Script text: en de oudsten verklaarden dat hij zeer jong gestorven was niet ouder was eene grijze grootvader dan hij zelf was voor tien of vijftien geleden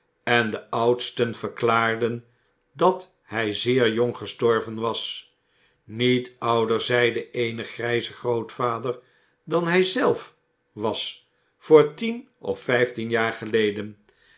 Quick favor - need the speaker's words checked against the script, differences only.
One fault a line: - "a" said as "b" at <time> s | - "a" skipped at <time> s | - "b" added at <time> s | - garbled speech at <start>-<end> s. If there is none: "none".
- "was" said as "zeide" at 6.8 s
- "jaar" added at 13.1 s